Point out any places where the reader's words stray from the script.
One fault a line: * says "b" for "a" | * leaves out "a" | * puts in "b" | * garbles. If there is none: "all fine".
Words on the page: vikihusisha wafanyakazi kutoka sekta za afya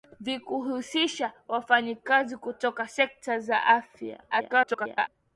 * garbles